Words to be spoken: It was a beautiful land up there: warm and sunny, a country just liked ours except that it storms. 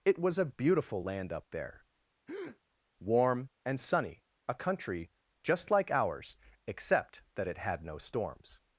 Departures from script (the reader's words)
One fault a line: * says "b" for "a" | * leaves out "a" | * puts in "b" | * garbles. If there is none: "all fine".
* says "like" for "liked"
* puts in "had no"